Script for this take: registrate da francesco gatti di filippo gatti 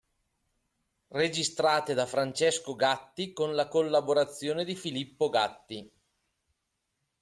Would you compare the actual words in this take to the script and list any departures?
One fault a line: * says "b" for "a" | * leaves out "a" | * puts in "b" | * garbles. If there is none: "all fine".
* puts in "con la collaborazione"